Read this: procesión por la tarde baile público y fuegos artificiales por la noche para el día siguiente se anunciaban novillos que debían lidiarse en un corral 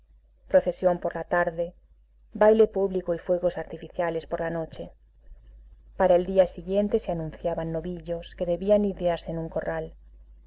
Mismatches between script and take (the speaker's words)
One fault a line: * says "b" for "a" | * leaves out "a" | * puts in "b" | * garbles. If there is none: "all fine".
all fine